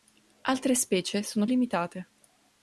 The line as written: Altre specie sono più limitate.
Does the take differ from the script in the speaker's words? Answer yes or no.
yes